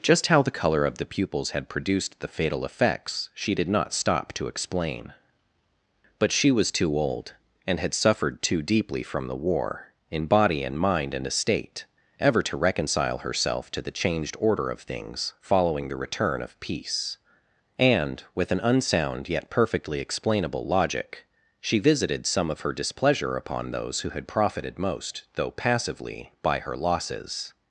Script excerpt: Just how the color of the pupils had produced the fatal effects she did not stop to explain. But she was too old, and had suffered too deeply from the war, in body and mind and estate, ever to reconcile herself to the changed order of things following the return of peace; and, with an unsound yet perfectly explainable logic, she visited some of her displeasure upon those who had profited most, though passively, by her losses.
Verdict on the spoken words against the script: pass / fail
pass